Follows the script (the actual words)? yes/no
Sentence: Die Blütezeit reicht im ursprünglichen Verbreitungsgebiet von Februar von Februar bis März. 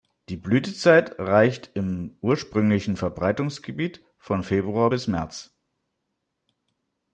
no